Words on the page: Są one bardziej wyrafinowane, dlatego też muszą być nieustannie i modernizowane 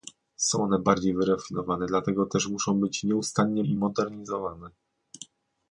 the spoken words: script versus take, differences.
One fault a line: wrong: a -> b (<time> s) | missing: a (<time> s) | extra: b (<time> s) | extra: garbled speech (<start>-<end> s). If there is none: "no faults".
no faults